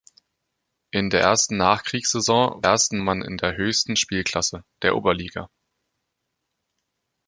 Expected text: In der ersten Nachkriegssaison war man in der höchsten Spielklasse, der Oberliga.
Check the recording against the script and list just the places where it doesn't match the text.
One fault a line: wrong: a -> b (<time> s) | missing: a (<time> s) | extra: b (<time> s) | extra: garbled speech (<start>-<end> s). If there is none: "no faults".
wrong: war -> ersten (2.6 s)